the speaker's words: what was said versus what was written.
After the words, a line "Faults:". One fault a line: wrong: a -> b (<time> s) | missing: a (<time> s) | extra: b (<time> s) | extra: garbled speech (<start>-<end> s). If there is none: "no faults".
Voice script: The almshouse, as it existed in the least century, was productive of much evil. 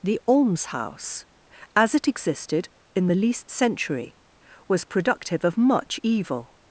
The almshouse, as it existed in the least century, was productive of much evil.
Faults:
no faults